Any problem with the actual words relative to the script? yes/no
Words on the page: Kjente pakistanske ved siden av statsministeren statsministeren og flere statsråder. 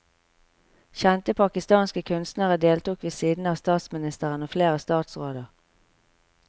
yes